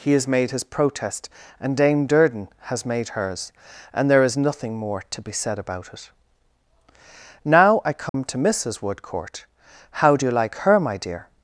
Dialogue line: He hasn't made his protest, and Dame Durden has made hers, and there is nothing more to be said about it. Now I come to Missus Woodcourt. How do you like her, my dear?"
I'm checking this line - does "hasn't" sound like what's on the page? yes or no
no